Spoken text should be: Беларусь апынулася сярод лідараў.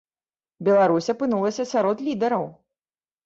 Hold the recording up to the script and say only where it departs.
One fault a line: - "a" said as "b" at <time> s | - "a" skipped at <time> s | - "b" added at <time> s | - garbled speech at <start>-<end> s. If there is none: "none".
none